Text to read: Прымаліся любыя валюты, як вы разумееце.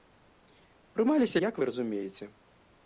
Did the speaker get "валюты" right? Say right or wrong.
wrong